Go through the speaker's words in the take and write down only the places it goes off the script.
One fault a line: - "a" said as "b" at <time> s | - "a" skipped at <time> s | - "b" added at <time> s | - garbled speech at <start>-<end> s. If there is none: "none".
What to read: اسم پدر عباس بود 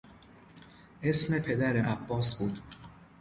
none